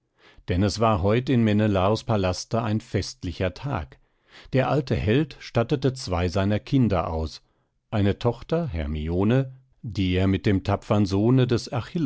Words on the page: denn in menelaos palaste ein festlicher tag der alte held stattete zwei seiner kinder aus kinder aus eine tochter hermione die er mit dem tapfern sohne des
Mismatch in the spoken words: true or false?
true